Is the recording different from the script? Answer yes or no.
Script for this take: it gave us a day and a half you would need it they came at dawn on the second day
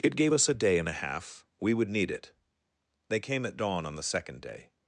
yes